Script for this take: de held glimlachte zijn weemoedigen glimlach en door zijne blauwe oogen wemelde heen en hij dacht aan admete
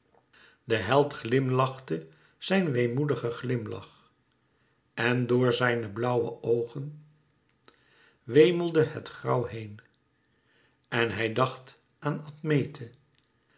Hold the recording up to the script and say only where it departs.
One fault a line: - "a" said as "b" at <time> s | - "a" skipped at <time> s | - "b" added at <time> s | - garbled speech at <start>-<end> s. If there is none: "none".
- "het grauw" added at 8.8 s